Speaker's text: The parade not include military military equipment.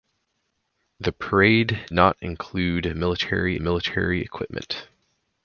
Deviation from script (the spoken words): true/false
false